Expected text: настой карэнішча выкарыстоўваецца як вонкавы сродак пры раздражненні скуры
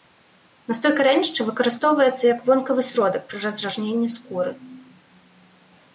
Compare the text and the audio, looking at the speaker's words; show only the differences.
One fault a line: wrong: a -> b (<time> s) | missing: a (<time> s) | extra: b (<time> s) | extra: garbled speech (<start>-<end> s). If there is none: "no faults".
no faults